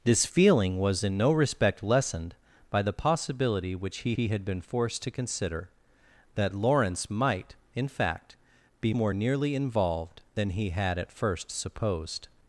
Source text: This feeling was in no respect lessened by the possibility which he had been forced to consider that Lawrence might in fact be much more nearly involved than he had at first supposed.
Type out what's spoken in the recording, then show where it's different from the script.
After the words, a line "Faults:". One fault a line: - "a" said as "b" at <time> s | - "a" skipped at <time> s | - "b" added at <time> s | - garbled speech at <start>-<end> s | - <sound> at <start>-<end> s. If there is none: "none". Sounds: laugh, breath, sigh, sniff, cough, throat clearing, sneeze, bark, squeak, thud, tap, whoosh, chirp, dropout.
This feeling was in no respect lessened by the possibility which he he had been forced to consider that Lawrence might in fact be more nearly involved than he had at first supposed.
Faults:
- "he" added at 4.1 s
- "much" skipped at 8.9 s